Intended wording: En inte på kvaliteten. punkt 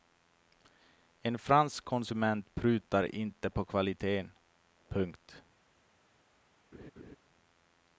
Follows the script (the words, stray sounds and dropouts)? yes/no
no